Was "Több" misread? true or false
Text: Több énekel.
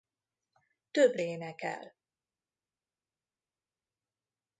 false